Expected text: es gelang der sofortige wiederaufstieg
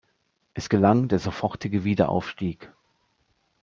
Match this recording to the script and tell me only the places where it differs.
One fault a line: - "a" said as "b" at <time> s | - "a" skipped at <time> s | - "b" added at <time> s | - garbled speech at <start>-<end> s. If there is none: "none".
none